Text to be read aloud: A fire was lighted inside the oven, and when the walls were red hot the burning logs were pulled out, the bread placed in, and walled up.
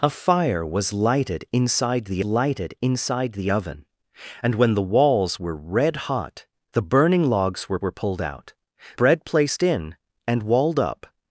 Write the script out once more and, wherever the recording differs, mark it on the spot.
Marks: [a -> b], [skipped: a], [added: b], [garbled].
A fire was lighted inside the [added: lighted inside the] oven, and when the walls were red hot the burning logs were [added: were] pulled out, [skipped: the] bread placed in, and walled up.